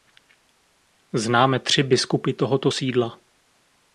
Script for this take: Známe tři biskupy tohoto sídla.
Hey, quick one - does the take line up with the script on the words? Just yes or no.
yes